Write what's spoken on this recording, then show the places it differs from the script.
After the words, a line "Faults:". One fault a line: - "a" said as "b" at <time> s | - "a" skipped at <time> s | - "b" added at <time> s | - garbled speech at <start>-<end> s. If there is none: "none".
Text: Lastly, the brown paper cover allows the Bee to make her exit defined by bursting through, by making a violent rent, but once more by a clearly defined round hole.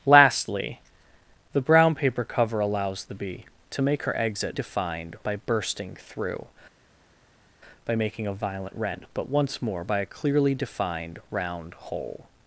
Lastly, the brown paper cover allows the Bee to make her exit defined by bursting through, by making a violent rent, but once more by a clearly defined round hole.
Faults:
none